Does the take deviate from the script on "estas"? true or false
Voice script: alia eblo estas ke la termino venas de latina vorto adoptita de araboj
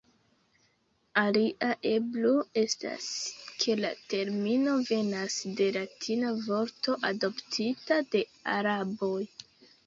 false